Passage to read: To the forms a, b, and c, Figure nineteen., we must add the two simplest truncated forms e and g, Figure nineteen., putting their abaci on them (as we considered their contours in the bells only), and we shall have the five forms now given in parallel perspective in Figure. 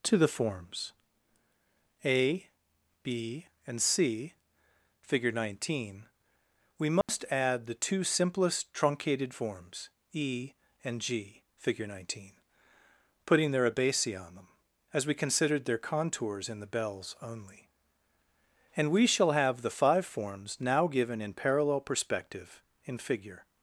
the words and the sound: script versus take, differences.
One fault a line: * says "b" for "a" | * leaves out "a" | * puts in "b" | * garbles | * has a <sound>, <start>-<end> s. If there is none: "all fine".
* has a dropout, 7.0-7.1 s